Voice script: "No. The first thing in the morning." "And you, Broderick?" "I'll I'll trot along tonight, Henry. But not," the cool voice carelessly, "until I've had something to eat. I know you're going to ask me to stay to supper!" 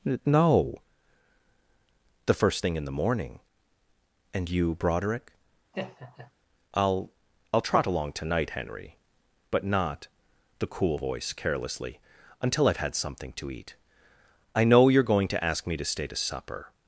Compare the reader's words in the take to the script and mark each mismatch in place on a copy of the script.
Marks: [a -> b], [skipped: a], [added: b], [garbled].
"No. The first thing in the morning." "And you, Broderick?" "I'll I'll trot along tonight, Henry. But not," the cool voice carelessly, "until I've had something to eat. I know you're going to ask me to stay to supper!"